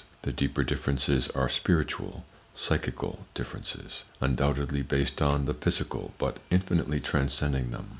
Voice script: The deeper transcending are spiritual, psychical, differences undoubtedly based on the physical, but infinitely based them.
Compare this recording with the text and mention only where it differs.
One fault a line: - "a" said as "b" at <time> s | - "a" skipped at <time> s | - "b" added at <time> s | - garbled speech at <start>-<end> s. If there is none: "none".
- "transcending" said as "differences" at 0.6 s
- "based" said as "transcending" at 7.0 s